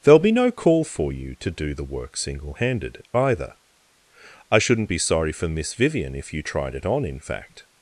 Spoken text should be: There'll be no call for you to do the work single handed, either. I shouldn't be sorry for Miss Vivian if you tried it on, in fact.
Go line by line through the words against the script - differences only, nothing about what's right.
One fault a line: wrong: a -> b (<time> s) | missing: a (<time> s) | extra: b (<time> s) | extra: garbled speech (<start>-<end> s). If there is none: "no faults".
no faults